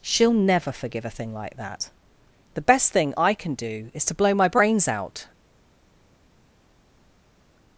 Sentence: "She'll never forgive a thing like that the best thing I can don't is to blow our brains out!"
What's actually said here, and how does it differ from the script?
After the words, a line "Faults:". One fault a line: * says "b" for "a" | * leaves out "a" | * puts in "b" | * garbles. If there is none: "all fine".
"She'll never forgive a thing like that the best thing I can do is to blow my brains out!"
Faults:
* says "do" for "don't"
* says "my" for "our"